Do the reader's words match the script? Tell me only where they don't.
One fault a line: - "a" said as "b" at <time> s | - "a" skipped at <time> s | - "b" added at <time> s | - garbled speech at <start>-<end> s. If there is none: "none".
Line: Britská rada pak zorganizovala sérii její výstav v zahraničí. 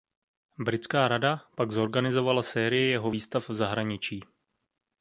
- "její" said as "jeho" at 2.9 s